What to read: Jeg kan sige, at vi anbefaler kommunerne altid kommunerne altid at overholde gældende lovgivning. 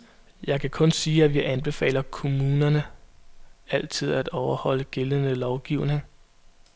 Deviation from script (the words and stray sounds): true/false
true